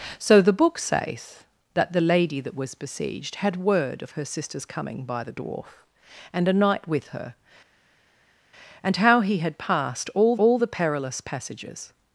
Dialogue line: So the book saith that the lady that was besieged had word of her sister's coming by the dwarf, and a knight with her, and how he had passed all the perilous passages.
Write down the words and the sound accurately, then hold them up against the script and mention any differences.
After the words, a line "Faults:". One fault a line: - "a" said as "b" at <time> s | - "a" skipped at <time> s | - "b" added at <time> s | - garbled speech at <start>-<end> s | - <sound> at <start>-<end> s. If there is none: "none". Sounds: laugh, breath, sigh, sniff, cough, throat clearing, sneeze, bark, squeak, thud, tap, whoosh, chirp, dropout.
So the book saith that the lady that was besieged had word of her sister's coming by the dwarf, and a knight with her, and how he had passed all all the perilous passages.
Faults:
- "all" added at 10.4 s